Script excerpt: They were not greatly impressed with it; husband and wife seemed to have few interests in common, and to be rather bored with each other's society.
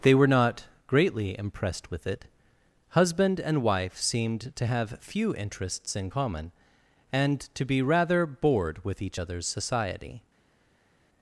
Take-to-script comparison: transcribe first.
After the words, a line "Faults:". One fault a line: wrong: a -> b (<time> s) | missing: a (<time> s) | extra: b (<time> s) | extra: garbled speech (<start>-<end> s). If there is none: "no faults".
They were not greatly impressed with it; husband and wife seemed to have few interests in common, and to be rather bored with each other's society.
Faults:
no faults